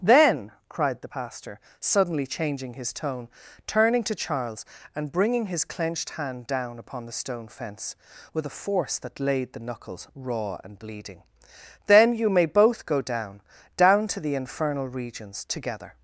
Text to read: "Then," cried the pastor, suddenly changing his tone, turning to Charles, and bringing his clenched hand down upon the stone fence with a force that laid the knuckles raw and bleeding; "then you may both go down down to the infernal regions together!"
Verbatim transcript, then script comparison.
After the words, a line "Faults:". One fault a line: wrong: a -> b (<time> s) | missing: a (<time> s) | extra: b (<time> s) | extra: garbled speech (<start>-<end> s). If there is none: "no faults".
"Then," cried the pastor, suddenly changing his tone, turning to Charles, and bringing his clenched hand down upon the stone fence with a force that laid the knuckles raw and bleeding; "then you may both go down down to the infernal regions together!"
Faults:
no faults